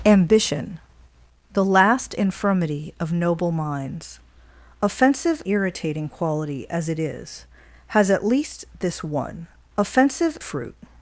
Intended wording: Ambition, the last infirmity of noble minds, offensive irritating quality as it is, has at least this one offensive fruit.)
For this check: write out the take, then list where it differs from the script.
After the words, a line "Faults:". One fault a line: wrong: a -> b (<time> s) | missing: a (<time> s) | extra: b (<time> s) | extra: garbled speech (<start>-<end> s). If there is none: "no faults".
Ambition, the last infirmity of noble minds, offensive irritating quality as it is, has at least this one offensive fruit.)
Faults:
no faults